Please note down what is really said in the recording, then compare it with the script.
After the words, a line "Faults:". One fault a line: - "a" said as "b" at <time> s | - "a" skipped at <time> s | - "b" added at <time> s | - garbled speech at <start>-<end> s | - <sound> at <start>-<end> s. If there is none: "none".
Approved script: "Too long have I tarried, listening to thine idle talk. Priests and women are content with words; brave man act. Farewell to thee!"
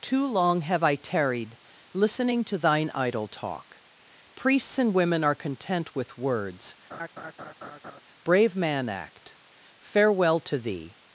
"Too long have I tarried, listening to thine idle talk. Priests and women are content with words; brave man act. Farewell to thee!"
Faults:
- laugh at 6.9-8.0 s